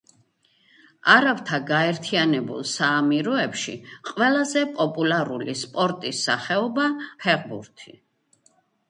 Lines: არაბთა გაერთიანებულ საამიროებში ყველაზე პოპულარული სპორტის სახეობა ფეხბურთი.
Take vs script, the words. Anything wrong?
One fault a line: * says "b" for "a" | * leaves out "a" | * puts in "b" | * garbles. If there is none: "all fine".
all fine